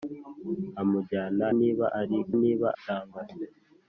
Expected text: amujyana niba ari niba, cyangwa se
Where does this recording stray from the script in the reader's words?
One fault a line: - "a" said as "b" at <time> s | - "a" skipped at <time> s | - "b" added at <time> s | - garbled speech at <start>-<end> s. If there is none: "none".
none